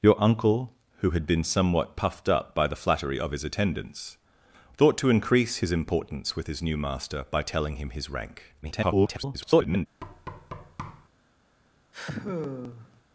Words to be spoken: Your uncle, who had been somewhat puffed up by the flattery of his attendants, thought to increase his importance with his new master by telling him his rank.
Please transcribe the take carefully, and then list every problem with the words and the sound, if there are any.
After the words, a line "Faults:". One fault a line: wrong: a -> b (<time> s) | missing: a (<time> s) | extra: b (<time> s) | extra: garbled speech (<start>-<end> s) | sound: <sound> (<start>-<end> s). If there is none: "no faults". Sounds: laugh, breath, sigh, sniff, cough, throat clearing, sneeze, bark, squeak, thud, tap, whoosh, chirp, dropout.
Your uncle, who had been somewhat puffed up by the flattery of his attendants, thought to increase his importance with his new master by telling him his rank. [garbled]
Faults:
extra: garbled speech (8.6-9.9 s)
sound: thud (10.0-11.1 s)
sound: sigh (11.9-13.0 s)